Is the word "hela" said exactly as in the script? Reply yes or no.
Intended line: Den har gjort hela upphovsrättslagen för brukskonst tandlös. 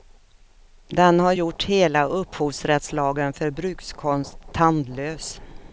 yes